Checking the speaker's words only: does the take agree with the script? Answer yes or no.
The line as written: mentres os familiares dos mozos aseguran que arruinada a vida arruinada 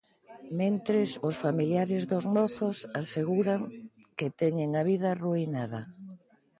no